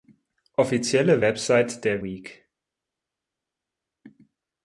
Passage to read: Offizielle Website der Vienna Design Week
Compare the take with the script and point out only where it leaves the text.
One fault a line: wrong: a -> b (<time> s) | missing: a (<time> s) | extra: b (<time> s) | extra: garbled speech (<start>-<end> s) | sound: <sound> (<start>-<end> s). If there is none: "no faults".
missing: Vienna Design (2.0 s)